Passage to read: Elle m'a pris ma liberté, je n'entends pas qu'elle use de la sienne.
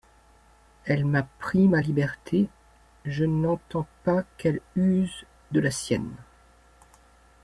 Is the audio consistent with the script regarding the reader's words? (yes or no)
yes